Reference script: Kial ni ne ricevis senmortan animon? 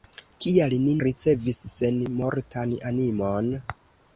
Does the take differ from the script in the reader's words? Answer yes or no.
yes